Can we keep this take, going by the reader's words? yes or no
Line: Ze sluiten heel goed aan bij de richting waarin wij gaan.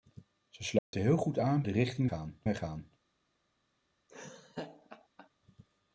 no